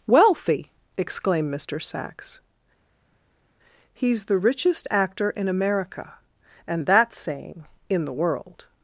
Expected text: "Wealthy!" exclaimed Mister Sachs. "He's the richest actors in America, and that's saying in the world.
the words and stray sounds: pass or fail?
fail